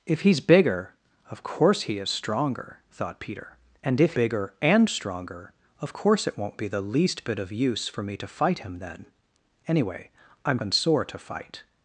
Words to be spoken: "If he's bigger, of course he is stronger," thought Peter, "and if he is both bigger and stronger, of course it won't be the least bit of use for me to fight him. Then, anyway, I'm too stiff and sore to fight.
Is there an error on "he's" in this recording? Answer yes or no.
no